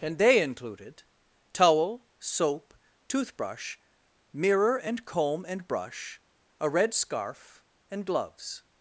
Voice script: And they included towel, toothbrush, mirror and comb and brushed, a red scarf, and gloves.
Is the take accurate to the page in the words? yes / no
no